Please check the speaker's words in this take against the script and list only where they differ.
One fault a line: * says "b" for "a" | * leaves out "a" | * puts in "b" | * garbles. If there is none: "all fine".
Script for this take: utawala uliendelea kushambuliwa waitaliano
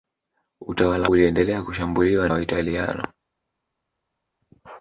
all fine